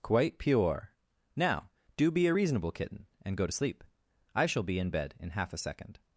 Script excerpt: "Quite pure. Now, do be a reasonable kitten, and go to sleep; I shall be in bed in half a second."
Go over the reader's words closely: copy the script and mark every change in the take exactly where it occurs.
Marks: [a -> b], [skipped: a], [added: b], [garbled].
"Quite pure. Now, do be a reasonable kitten, and go to sleep; I shall be in bed in half a second."